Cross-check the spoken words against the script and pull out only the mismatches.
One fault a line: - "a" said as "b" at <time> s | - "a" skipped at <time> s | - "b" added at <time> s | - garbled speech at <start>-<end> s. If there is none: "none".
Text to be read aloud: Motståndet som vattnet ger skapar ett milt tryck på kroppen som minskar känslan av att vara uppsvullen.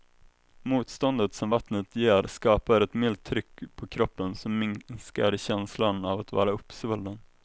none